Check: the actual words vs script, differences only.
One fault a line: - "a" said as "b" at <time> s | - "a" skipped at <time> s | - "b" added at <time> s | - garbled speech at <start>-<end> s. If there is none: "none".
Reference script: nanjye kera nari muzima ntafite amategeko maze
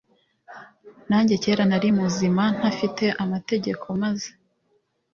none